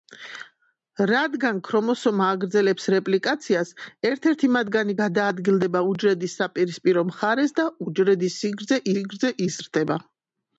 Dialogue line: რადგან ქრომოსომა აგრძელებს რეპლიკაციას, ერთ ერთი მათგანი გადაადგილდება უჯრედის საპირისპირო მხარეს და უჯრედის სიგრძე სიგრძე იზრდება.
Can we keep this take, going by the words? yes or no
yes